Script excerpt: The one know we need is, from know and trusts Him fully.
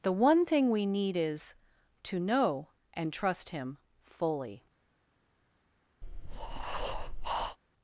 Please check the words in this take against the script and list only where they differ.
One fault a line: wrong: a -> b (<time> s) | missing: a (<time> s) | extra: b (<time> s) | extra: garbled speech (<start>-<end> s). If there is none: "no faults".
wrong: know -> thing (0.5 s)
wrong: from -> to (2.0 s)
wrong: trusts -> trust (3.1 s)